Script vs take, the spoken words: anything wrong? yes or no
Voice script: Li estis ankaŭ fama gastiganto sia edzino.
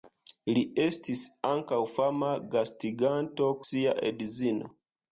no